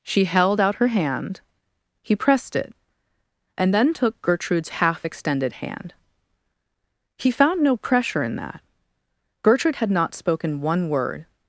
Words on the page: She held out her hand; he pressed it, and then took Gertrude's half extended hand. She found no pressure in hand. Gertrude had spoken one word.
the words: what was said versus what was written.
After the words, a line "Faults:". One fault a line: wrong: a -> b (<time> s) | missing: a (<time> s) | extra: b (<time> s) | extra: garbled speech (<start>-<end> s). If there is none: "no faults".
She held out her hand; he pressed it, and then took Gertrude's half extended hand. He found no pressure in that. Gertrude had not spoken one word.
Faults:
wrong: She -> He (7.2 s)
wrong: hand -> that (8.4 s)
extra: not (9.9 s)